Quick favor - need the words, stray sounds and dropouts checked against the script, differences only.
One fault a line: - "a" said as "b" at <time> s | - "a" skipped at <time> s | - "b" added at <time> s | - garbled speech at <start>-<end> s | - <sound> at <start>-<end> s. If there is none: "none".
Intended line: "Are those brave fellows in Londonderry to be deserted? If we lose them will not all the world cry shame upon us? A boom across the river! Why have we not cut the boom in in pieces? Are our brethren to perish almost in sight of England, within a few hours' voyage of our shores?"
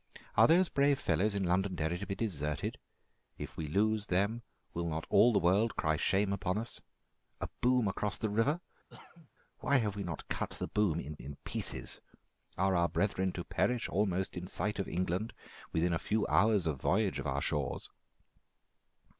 - cough at 8.9-9.3 s